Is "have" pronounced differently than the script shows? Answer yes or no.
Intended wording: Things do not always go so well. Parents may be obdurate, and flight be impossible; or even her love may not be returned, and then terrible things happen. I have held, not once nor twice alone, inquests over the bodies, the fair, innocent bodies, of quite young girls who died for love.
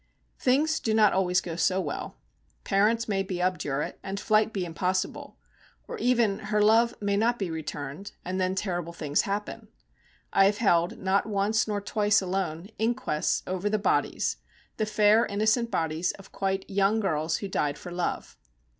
no